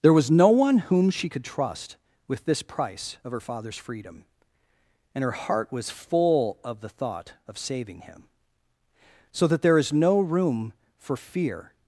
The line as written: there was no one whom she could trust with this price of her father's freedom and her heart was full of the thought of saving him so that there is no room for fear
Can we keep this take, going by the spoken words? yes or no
yes